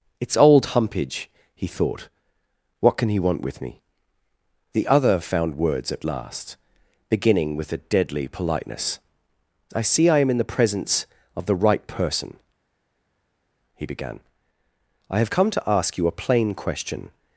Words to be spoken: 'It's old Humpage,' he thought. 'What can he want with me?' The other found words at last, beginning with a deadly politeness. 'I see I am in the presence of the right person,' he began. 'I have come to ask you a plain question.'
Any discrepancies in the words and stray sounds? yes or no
no